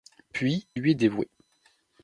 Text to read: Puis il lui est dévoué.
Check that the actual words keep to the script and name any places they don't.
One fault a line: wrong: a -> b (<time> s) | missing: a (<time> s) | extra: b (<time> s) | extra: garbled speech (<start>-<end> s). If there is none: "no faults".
missing: il (0.7 s)